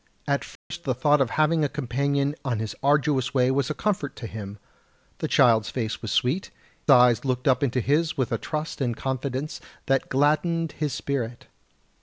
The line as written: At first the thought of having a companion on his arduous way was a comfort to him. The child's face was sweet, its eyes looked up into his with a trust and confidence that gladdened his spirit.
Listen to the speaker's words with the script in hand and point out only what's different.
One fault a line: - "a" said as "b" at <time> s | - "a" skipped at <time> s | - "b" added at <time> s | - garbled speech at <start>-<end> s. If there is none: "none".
- "its" skipped at 6.5 s